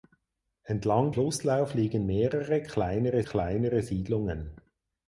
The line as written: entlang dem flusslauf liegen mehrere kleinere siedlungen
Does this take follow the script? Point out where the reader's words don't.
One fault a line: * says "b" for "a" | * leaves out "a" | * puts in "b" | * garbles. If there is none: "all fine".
* leaves out "dem"
* puts in "kleinere"